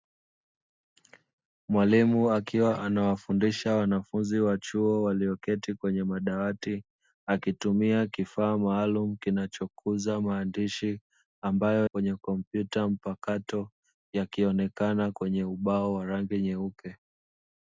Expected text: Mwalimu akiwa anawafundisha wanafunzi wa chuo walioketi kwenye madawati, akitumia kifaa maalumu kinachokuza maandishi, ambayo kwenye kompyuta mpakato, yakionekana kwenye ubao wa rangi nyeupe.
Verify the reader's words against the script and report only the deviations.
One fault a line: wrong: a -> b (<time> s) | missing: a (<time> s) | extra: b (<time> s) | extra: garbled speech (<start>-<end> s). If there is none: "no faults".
no faults